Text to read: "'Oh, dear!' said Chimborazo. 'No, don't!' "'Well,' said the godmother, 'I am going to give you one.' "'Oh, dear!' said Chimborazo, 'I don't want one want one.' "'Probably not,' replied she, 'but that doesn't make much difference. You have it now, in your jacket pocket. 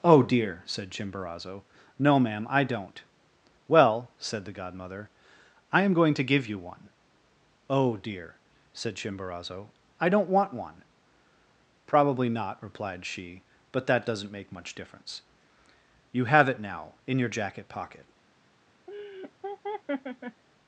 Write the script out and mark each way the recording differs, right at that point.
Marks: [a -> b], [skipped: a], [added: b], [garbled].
"'Oh, dear!' said Chimborazo. 'No, [added: ma'am I] don't!' "'Well,' said the godmother, 'I am going to give you one.' "'Oh, dear!' said Chimborazo, 'I don't want one [skipped: want one.'] "'Probably not,' replied she, 'but that doesn't make much difference. You have it now, in your jacket pocket.